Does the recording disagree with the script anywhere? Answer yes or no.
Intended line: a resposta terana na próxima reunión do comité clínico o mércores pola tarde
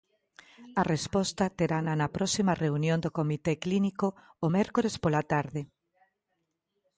no